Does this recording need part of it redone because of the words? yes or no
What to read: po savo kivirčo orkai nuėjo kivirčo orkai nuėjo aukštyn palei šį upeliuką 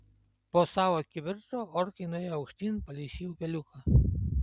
yes